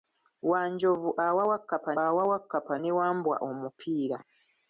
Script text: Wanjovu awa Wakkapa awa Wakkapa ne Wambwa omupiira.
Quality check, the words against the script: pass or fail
pass